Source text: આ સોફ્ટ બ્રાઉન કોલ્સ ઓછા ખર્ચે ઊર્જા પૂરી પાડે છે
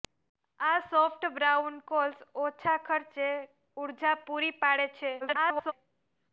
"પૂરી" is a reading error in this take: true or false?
false